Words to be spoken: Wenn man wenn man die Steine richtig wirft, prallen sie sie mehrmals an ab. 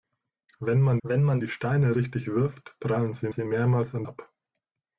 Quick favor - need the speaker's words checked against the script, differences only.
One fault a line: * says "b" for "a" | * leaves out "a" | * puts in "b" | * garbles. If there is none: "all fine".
all fine